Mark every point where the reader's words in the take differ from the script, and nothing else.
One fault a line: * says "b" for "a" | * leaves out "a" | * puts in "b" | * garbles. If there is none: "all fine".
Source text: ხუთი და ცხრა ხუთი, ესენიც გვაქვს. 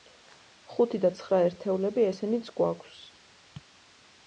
* says "ერთეულები" for "ხუთი"